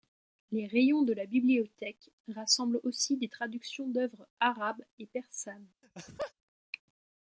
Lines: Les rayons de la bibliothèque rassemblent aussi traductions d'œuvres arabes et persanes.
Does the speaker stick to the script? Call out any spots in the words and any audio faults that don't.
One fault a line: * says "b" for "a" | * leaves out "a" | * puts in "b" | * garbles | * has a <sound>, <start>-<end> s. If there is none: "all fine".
* puts in "des"
* has a laugh, 5.8-6.3 s